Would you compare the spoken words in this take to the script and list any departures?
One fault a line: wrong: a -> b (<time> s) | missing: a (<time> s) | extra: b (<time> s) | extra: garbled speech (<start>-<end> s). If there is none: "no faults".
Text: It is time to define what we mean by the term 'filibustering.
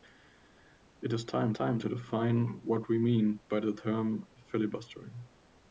extra: time (1.5 s)